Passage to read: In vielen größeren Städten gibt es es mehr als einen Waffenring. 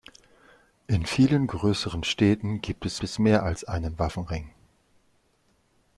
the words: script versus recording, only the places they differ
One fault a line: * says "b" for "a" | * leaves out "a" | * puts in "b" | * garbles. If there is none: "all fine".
all fine